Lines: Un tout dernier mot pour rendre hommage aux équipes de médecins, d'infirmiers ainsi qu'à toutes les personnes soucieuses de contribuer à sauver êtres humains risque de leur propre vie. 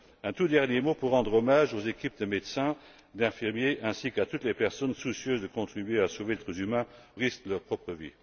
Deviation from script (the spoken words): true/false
false